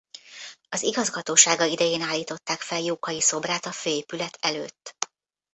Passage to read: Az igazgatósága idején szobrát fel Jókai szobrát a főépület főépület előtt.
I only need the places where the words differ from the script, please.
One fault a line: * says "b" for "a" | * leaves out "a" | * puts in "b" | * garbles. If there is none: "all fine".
* says "állították" for "szobrát"
* leaves out "főépület"